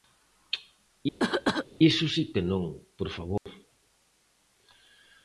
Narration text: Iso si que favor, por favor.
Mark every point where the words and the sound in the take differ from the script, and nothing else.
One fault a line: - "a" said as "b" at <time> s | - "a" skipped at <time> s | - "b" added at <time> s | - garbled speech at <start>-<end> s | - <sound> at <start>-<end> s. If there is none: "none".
- cough at 1.2-1.7 s
- "favor" said as "non" at 2.5 s
- dropout at 3.4-3.5 s